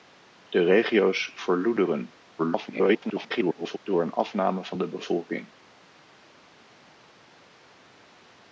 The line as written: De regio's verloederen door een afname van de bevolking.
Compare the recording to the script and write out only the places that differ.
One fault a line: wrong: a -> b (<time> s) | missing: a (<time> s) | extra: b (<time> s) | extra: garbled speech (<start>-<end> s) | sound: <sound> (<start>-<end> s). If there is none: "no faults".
extra: garbled speech (2.4-3.8 s)